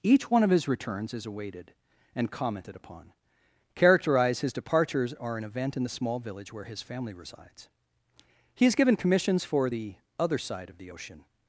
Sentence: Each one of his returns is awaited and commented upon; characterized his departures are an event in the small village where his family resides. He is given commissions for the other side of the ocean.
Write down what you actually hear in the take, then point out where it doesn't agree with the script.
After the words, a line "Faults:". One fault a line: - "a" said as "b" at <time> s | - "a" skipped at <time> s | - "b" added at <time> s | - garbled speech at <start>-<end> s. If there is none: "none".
Each one of his returns is awaited and commented upon; characterized his departures are an event in the small village where his family resides. He is given commissions for the other side of the ocean.
Faults:
none